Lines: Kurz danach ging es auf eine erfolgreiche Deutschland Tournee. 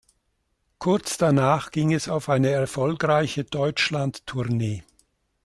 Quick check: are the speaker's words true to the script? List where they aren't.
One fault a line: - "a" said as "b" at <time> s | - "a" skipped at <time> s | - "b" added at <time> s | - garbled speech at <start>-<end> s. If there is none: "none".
none